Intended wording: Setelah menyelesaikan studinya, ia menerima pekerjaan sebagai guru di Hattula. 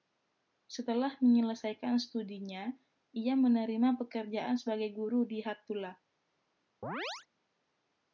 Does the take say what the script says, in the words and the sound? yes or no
no